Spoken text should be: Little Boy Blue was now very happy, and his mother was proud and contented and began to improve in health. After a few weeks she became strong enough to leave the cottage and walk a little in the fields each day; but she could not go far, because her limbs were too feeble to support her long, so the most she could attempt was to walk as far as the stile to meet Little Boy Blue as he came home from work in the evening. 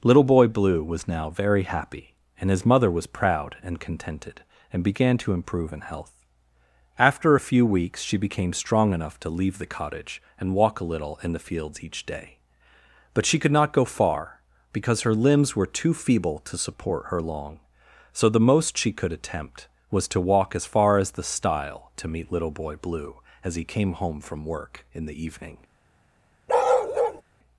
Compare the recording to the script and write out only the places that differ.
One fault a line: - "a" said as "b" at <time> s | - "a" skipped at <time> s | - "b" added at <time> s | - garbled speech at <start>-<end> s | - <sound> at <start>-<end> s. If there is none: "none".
- bark at 26.5-27.2 s